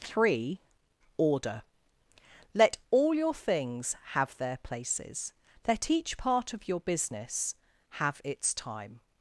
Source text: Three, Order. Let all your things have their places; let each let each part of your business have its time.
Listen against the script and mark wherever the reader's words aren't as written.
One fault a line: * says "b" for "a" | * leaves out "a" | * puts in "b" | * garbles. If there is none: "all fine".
* leaves out "let each"